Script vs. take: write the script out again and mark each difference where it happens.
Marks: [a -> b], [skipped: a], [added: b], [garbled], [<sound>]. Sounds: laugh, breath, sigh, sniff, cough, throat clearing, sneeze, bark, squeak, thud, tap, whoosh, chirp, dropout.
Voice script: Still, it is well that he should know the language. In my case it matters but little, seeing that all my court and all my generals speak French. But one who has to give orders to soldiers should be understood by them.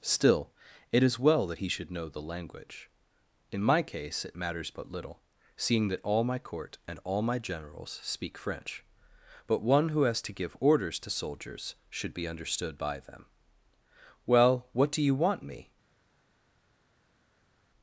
Still, it is well that he should know the language. In my case it matters but little, seeing that all my court and all my generals speak French. But one who has to give orders to soldiers should be understood by them. [added: Well what do you want me]